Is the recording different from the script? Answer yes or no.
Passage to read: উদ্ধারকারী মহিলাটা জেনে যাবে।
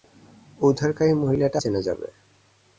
no